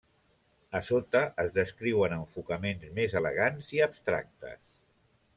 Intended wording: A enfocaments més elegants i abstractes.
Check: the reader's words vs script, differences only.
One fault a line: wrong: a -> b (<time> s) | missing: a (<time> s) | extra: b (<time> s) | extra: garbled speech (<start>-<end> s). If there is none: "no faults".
extra: sota es descriuen (0.8 s)